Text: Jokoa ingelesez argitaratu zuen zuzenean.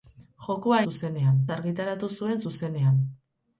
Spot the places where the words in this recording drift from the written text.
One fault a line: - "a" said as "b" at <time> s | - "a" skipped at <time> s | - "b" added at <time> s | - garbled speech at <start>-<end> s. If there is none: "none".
- "ingelesez" said as "zuzenean" at 0.9 s